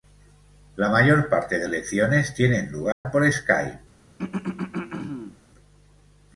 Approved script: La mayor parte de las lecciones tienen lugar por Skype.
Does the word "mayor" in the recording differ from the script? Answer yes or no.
no